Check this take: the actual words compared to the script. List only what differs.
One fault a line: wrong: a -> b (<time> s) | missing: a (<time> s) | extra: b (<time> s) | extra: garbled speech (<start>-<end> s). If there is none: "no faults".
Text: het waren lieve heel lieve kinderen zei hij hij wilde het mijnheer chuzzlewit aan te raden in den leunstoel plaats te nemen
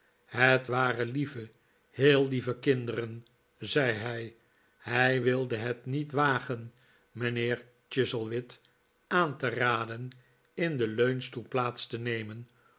extra: niet wagen (5.9 s)